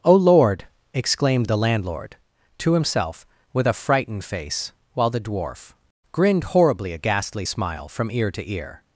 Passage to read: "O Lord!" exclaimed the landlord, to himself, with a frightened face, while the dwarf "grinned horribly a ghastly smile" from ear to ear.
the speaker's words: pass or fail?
pass